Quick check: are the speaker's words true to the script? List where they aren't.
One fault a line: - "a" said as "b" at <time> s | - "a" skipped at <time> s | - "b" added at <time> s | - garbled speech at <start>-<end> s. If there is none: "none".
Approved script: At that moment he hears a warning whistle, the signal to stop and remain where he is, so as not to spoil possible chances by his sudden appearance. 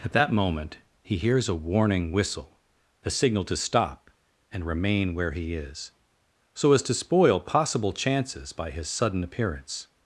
- "not" skipped at 6.8 s